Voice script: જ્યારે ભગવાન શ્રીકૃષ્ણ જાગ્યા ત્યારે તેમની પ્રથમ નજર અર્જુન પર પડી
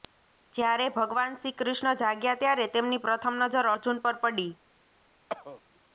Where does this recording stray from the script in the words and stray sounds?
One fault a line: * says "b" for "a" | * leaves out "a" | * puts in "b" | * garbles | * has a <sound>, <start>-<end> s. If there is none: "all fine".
* has a cough, 5.3-5.6 s